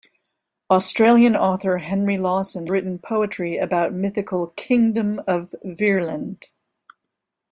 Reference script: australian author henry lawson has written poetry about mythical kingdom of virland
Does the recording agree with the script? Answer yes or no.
no